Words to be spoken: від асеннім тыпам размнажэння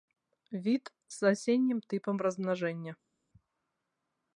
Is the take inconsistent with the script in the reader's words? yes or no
yes